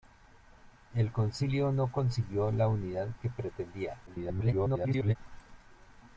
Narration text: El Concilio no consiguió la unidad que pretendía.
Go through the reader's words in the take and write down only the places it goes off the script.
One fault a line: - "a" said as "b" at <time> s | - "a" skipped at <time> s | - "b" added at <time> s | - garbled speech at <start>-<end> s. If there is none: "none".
- garbled speech at 4.1-5.2 s